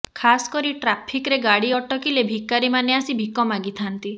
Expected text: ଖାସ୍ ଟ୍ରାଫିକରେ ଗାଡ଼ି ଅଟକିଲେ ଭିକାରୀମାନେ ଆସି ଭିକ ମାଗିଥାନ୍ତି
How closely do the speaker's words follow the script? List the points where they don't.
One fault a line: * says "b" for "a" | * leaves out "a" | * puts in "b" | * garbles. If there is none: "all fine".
* puts in "କରି"